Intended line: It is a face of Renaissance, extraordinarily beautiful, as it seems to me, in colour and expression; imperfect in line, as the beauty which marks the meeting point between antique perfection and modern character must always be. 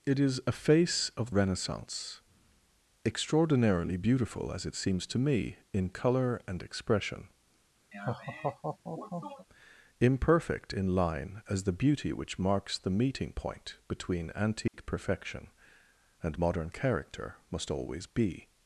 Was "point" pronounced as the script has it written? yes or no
yes